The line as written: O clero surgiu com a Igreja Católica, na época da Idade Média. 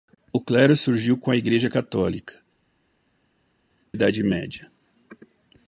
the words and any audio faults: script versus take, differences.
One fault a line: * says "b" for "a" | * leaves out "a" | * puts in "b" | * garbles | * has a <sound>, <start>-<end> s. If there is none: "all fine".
* leaves out "na época da"